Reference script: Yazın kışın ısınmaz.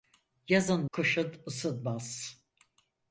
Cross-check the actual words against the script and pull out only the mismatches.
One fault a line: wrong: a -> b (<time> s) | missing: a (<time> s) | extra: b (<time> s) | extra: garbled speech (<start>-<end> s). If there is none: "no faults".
no faults